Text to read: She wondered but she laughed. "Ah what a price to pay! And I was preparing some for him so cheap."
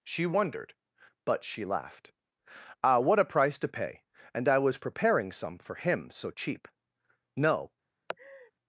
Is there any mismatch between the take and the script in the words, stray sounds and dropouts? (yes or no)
yes